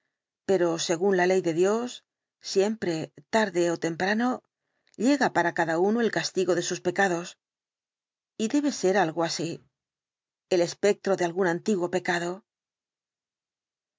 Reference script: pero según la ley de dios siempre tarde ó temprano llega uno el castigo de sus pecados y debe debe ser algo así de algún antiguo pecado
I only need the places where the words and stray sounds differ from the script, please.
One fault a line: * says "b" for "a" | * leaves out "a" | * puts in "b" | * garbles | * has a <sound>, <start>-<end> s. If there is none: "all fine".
* puts in "para cada"
* leaves out "debe"
* puts in "el espectro"